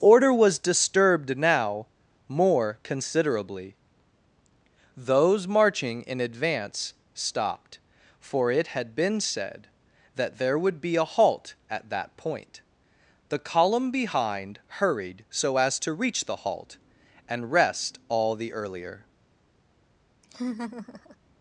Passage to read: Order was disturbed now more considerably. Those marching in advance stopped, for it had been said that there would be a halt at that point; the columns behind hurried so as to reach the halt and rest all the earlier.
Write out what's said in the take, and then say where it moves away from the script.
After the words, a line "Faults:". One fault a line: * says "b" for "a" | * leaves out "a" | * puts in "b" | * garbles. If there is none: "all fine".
Order was disturbed now more considerably. Those marching in advance stopped, for it had been said that there would be a halt at that point; the column behind hurried so as to reach the halt and rest all the earlier.
Faults:
* says "column" for "columns"